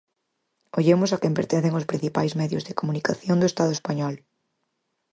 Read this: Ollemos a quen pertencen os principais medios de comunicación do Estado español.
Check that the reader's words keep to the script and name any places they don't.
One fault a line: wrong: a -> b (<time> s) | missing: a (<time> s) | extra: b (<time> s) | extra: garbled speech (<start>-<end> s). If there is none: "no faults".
no faults